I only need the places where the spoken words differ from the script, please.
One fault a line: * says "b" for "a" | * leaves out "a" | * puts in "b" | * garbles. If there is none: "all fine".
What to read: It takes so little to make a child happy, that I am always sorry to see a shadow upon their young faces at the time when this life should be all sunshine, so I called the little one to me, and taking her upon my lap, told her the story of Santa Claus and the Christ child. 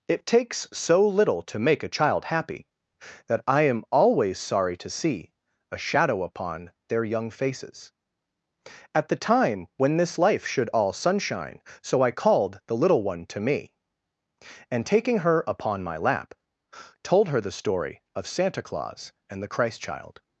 * leaves out "be"